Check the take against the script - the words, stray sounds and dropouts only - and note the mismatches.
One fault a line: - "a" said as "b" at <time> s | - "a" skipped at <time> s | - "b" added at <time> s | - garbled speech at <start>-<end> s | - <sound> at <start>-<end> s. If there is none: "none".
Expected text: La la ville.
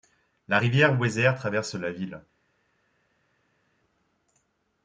- "rivière Weser traverse" added at 0.6 s